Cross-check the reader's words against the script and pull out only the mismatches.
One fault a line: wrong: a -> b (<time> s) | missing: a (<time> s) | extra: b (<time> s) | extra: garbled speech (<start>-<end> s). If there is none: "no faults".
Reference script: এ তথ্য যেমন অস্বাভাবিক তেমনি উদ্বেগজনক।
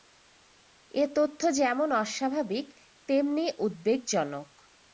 no faults